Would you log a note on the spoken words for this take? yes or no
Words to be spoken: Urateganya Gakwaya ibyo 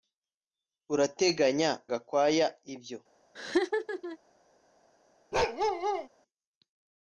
no